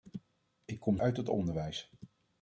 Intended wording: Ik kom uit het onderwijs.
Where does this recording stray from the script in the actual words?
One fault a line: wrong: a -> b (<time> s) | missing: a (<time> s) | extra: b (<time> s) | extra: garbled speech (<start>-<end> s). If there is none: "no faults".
no faults